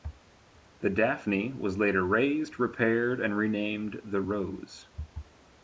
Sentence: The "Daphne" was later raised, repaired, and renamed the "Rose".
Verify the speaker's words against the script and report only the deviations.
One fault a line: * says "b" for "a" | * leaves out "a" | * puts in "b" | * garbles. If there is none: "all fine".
all fine